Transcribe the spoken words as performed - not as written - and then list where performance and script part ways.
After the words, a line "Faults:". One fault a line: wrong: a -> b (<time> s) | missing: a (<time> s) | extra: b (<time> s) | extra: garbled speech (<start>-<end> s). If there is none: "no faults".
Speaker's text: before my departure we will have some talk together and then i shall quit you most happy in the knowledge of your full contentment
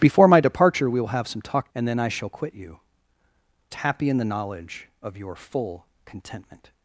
before my departure we will have some talk and then i shall quit you happy in the knowledge of your full contentment
Faults:
missing: together (1.7 s)
missing: most (2.8 s)